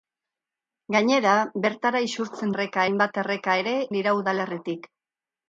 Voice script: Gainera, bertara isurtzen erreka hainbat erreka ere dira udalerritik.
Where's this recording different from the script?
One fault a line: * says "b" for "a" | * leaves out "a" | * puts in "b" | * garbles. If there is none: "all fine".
all fine